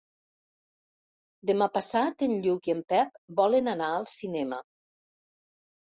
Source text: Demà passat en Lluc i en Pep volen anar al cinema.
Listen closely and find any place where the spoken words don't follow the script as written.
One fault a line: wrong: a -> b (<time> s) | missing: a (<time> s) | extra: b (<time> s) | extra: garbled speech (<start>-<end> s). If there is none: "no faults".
no faults